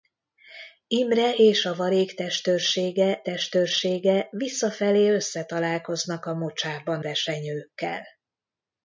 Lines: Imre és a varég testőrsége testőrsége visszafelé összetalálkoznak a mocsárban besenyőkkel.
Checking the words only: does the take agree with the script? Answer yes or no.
yes